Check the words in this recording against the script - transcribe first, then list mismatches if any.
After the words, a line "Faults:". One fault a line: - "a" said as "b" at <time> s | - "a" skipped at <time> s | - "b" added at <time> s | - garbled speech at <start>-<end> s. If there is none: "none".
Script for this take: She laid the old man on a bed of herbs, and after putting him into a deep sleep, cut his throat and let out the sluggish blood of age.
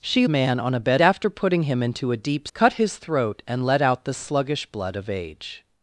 She man on a bed after putting him into a deep cut his throat and let out the sluggish blood of age.
Faults:
- "laid the old" skipped at 0.2 s
- "of herbs and" skipped at 1.0 s
- "sleep" skipped at 2.5 s